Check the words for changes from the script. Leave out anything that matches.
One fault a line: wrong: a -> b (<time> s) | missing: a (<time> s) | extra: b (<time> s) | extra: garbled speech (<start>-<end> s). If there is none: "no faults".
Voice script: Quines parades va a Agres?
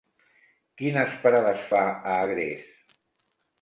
no faults